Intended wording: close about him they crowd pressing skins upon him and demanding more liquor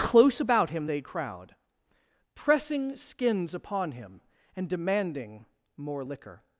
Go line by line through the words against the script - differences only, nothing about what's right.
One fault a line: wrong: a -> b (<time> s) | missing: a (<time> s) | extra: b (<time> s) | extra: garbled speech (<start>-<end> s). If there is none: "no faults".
no faults